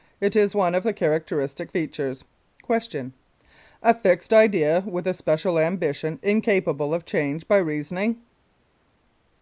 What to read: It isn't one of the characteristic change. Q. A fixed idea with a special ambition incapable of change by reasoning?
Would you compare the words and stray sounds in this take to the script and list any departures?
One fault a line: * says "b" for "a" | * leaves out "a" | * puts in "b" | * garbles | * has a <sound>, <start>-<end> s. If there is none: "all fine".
* says "is" for "isn't"
* says "features" for "change"